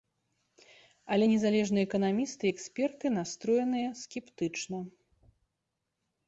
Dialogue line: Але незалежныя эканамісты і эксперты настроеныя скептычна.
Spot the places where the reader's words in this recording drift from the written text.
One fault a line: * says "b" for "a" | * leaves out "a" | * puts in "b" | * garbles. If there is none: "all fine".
all fine